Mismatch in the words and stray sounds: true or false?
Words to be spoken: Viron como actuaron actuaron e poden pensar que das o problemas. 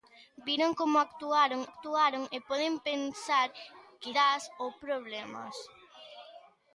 false